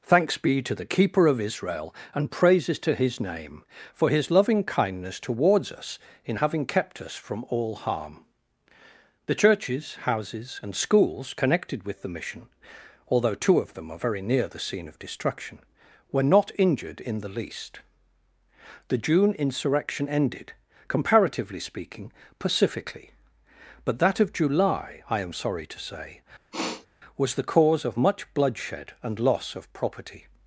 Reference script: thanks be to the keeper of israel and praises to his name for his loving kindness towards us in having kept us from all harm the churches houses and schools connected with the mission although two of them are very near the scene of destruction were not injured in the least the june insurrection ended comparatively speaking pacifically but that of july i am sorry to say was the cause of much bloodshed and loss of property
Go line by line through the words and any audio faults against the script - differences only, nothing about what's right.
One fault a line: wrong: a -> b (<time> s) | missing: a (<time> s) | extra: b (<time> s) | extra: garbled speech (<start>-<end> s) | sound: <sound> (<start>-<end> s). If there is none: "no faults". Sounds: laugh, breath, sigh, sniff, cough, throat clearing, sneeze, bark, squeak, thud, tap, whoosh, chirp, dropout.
sound: sniff (26.5-26.9 s)